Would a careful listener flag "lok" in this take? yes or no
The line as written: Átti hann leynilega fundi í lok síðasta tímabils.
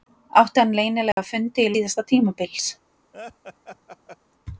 yes